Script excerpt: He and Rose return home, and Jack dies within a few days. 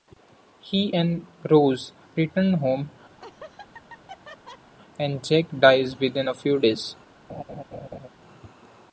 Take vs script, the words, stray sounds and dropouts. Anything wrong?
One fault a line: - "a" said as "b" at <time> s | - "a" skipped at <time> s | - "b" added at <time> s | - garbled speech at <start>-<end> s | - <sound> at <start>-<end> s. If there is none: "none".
- laugh at 3.2-4.7 s
- laugh at 7.3-8.1 s